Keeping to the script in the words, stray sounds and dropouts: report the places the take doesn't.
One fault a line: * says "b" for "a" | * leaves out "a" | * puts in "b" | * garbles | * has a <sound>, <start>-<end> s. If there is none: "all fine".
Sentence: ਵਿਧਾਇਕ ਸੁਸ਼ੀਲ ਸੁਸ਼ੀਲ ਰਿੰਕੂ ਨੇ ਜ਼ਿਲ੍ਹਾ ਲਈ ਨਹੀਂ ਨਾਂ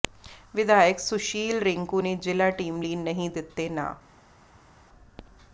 * leaves out "ਸੁਸ਼ੀਲ"
* puts in "ਟੀਮ"
* puts in "ਦਿੱਤੇ"